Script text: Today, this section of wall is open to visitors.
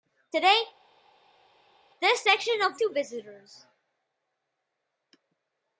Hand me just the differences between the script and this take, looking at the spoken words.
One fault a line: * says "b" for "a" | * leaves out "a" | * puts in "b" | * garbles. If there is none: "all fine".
* leaves out "wall is open"